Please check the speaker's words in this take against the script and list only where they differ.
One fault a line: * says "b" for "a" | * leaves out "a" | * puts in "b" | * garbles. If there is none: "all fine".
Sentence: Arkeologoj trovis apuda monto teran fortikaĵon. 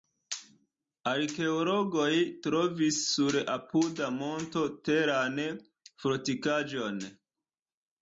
* puts in "sur"